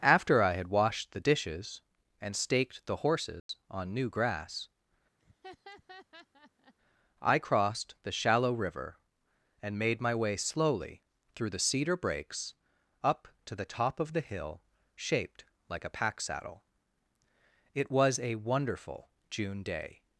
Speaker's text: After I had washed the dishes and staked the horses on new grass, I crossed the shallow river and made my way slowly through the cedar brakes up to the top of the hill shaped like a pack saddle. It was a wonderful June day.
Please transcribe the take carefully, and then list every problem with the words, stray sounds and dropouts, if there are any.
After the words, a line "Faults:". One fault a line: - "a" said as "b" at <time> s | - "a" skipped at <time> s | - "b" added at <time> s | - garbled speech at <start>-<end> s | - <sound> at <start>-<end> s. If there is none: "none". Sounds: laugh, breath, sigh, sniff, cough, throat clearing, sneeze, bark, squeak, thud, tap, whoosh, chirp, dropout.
After I had washed the dishes and staked the horses on new grass, I crossed the shallow river and made my way slowly through the cedar brakes up to the top of the hill shaped like a pack saddle. It was a wonderful June day.
Faults:
- dropout at 3.4-3.5 s
- laugh at 5.2-6.7 s